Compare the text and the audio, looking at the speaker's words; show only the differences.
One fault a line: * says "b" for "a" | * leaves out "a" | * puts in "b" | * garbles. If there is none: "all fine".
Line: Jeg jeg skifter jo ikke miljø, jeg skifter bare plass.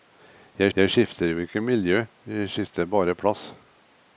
all fine